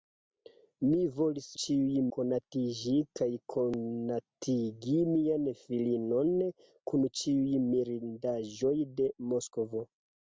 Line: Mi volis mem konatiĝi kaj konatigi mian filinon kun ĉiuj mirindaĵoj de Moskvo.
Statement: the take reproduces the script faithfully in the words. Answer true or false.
false